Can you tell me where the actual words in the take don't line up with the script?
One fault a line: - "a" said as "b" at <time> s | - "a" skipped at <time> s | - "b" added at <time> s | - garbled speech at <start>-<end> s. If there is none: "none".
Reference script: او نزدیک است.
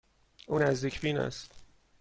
- "بین" added at 1.0 s